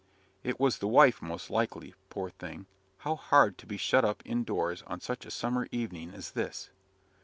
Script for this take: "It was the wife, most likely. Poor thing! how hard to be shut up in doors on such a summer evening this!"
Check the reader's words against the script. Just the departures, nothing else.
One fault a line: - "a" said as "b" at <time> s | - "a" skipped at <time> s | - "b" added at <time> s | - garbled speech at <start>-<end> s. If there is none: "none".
- "as" added at 6.1 s